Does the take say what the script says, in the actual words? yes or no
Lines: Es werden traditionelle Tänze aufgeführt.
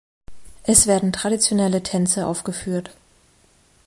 yes